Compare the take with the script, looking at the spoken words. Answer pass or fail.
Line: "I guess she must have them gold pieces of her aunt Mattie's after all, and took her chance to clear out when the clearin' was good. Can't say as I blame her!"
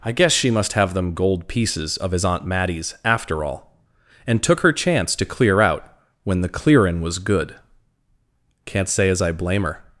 fail